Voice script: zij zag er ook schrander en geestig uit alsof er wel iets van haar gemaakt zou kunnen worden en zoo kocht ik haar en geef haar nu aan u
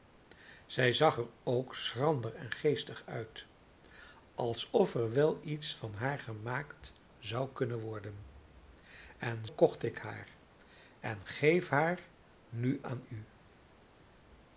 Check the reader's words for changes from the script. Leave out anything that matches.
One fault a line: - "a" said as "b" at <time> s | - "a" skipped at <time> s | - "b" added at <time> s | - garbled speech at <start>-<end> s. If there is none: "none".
- "zoo" skipped at 9.5 s